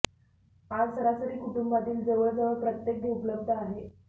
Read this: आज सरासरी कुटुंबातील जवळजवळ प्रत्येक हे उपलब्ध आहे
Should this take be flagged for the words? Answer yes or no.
no